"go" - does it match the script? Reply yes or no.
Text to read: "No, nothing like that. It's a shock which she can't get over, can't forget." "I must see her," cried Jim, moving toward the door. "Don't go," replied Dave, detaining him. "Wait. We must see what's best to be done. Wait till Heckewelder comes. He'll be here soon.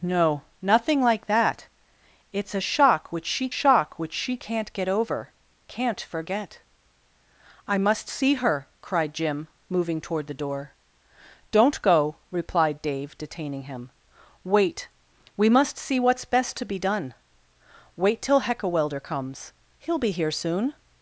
yes